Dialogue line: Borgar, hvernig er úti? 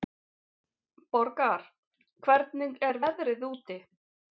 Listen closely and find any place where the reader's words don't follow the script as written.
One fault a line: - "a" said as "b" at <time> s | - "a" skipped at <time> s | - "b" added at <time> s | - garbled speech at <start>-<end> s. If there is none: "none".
- "veðrið" added at 3.0 s